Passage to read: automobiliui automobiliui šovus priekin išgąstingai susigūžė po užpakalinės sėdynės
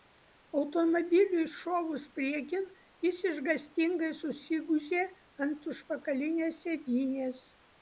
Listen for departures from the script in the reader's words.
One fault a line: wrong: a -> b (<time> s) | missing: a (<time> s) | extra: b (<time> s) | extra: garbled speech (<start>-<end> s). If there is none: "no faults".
missing: automobiliui (1.4 s)
extra: jis (3.1 s)
wrong: po -> ant (5.5 s)